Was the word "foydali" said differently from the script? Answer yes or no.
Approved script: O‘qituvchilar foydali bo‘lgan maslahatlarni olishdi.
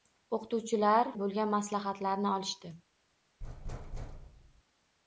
yes